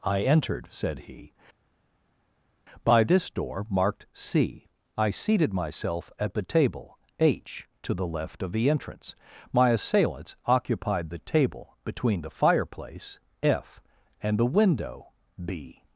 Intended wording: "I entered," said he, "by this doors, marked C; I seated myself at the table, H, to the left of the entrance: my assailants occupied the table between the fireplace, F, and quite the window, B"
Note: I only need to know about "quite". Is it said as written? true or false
false